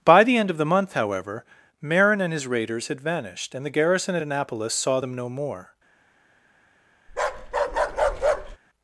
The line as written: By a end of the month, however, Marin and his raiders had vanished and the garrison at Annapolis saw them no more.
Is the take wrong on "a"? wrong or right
wrong